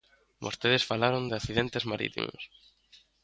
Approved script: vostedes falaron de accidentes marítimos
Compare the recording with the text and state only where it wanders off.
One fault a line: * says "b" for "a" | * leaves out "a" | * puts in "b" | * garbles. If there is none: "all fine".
all fine